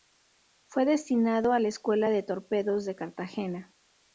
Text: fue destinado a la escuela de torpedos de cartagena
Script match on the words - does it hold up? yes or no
yes